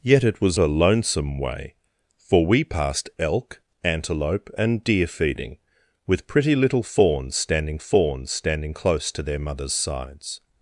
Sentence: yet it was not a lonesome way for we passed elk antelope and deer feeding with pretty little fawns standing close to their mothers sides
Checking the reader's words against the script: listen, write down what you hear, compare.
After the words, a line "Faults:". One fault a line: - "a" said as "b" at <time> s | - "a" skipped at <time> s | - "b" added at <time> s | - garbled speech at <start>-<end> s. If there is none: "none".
yet it was a lonesome way for we passed elk antelope and deer feeding with pretty little fawns standing fawns standing close to their mothers sides
Faults:
- "not" skipped at 0.6 s
- "fawns standing" added at 7.8 s